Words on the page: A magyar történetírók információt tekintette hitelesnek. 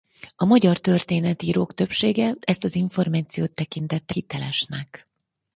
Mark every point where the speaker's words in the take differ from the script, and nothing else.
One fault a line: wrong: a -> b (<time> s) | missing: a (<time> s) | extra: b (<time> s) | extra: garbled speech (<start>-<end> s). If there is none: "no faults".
extra: többsége ezt az (1.7 s)